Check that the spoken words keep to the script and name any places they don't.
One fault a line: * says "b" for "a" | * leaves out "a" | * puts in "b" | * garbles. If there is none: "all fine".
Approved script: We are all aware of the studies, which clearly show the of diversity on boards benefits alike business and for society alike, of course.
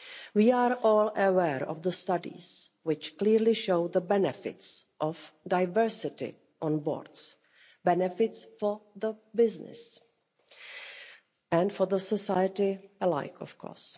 * puts in "benefits"
* says "for" for "alike"